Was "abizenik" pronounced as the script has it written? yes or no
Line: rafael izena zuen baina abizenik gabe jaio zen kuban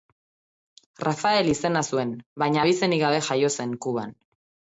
yes